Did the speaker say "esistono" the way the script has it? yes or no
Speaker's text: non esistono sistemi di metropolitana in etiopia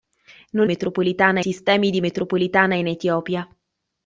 no